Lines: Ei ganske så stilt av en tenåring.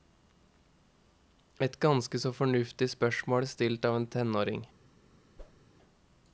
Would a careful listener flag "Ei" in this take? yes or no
yes